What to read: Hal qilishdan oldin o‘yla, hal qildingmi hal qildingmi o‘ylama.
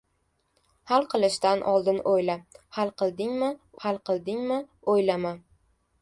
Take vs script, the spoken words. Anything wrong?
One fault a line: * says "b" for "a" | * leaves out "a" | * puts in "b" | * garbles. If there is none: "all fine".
all fine